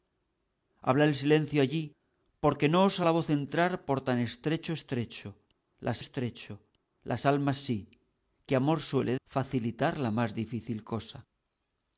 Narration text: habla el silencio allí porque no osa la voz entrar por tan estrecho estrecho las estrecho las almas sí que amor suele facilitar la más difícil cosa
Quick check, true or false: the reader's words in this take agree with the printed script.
true